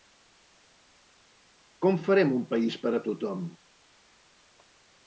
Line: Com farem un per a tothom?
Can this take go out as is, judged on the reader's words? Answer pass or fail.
fail